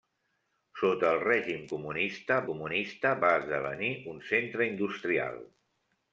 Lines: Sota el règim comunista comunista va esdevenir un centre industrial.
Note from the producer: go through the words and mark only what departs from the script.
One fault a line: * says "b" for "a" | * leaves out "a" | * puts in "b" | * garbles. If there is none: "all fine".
all fine